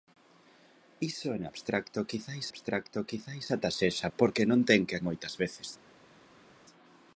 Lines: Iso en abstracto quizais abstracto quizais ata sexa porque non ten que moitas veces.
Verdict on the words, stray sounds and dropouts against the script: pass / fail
pass